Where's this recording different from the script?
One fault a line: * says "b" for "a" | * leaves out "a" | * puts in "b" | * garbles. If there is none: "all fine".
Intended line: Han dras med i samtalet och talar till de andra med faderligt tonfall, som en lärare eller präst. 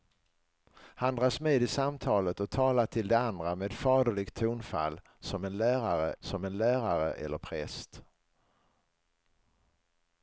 * puts in "som en lärare"